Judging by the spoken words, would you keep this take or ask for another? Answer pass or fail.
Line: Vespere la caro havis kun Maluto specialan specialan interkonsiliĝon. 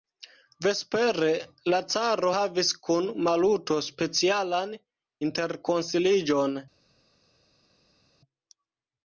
fail